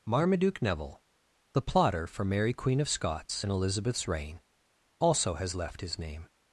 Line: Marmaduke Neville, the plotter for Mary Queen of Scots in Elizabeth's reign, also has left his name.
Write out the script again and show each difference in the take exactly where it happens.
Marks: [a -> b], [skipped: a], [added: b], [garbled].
Marmaduke Neville, the plotter for Mary Queen of Scots in Elizabeth's reign, also has left his name.